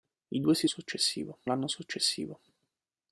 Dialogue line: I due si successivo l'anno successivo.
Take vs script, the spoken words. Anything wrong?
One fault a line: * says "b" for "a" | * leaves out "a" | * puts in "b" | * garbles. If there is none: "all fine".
all fine